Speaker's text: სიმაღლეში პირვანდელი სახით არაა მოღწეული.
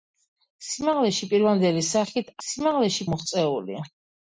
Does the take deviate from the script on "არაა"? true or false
true